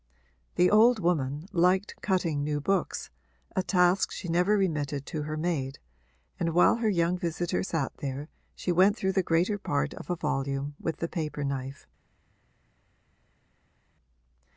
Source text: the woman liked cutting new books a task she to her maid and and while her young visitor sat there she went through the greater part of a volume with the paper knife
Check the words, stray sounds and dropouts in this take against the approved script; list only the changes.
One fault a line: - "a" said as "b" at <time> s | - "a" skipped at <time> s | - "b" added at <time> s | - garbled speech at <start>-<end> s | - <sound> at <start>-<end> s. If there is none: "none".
- "old" added at 0.7 s
- "never remitted" added at 4.3 s
- "and" skipped at 6.5 s